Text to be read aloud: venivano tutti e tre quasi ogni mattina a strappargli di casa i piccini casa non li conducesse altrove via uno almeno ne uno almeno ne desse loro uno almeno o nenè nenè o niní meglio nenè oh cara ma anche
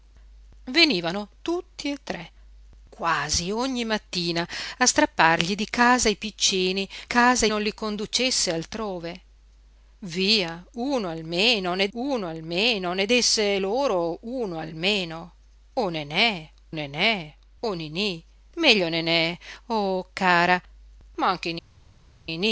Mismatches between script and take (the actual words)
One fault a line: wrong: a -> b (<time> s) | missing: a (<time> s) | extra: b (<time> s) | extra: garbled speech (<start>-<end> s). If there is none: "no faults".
no faults